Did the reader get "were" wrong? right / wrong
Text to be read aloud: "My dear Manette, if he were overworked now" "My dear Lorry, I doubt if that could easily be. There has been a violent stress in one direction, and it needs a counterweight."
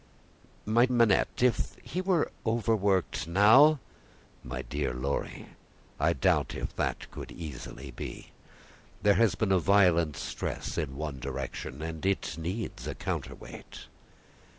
right